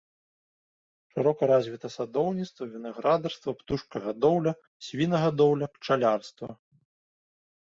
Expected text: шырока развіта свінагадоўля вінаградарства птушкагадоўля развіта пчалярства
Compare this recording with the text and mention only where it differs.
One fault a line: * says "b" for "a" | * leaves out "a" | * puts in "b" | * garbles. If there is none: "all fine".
* says "садоўніцтва" for "свінагадоўля"
* says "свінагадоўля" for "развіта"